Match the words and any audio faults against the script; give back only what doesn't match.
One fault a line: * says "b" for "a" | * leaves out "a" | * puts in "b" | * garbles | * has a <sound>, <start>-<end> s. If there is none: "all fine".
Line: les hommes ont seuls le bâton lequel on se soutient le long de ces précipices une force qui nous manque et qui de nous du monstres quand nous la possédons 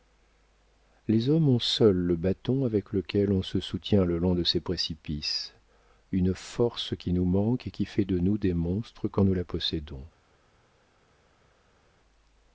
* puts in "avec"
* puts in "fait"
* says "des" for "du"